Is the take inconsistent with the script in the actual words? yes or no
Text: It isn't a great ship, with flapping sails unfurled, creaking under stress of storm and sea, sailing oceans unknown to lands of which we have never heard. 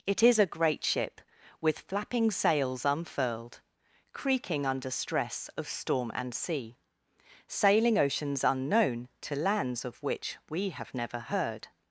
yes